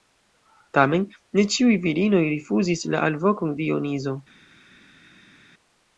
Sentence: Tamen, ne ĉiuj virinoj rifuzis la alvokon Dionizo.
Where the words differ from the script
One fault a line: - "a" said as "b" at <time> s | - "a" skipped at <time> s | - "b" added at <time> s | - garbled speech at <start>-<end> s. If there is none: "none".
none